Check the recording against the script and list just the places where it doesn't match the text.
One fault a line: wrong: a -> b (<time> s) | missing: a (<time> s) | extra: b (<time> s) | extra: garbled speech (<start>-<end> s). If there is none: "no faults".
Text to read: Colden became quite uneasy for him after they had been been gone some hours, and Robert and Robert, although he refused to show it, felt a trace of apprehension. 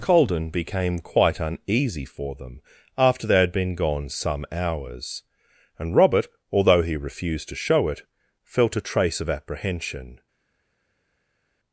wrong: him -> them (2.3 s)
missing: been (3.8 s)
missing: and Robert (6.3 s)